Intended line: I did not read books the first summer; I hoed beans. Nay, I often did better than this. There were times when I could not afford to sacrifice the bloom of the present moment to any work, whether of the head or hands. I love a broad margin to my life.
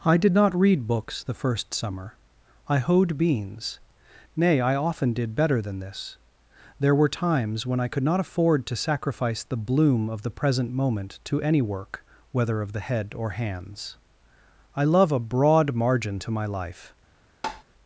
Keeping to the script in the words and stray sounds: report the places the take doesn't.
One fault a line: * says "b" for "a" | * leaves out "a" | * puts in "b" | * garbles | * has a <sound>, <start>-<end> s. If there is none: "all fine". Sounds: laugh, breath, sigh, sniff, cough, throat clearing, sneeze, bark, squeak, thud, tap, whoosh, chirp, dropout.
* has a tap, 17.4-17.6 s